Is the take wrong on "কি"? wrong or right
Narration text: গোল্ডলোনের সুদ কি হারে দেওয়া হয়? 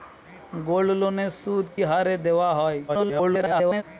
wrong